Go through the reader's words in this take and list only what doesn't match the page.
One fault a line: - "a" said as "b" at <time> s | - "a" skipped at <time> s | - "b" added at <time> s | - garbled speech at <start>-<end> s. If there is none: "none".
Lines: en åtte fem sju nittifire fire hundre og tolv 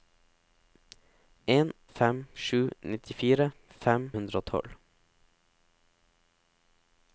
- "åtte" skipped at 1.7 s
- "fire" said as "fem" at 3.7 s